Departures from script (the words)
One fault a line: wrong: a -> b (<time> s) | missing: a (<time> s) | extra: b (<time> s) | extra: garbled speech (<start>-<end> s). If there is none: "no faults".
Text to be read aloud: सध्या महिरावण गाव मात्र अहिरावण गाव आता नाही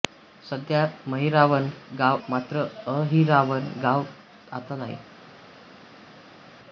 no faults